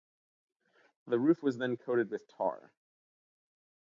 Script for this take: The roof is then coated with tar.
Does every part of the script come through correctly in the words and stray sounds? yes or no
no